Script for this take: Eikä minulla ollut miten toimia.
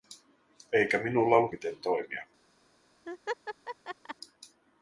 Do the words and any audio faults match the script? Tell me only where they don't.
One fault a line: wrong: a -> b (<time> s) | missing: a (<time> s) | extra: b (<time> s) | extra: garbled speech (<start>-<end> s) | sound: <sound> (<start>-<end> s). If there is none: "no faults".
sound: laugh (3.1-4.2 s)